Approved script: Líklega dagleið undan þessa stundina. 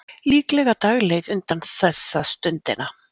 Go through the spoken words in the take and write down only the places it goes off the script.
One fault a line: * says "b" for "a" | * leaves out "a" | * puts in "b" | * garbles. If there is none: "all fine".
all fine